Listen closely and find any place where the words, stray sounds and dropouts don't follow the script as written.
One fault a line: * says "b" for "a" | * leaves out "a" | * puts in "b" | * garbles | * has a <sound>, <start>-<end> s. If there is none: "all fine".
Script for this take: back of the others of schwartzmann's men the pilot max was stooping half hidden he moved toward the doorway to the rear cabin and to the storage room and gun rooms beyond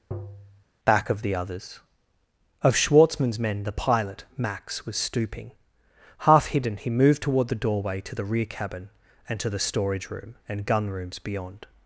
* has a tap, 0.1-0.6 s